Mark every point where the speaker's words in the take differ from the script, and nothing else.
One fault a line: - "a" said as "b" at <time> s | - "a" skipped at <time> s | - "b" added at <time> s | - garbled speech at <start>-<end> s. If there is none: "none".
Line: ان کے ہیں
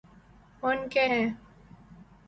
none